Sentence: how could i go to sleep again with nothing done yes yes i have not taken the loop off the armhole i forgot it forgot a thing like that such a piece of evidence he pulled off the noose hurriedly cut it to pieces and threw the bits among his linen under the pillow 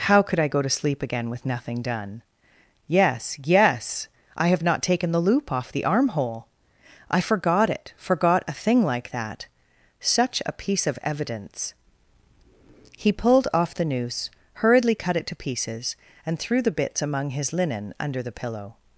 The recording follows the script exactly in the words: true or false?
true